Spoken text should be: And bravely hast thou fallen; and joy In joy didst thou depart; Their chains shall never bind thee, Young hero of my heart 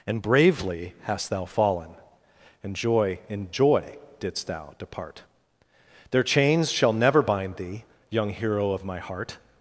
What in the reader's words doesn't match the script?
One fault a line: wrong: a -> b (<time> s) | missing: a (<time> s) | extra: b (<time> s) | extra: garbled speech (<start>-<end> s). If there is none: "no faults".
no faults